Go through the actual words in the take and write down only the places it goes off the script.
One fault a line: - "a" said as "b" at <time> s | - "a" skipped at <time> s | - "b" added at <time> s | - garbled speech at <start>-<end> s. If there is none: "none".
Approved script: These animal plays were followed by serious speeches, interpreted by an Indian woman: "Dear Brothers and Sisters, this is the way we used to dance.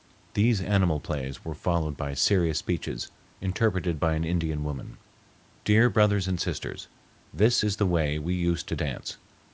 none